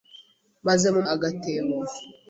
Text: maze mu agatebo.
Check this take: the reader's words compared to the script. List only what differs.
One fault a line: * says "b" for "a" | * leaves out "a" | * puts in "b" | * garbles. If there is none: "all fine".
all fine